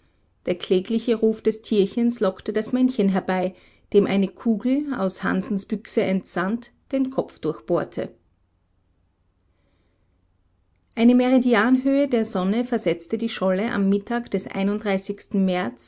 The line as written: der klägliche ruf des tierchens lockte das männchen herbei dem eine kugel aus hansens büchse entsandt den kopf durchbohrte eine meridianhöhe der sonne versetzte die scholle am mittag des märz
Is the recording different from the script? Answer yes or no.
no